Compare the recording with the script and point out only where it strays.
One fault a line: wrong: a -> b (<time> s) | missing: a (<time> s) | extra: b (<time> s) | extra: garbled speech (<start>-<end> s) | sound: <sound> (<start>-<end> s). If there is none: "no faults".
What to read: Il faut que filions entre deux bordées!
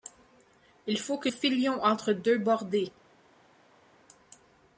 no faults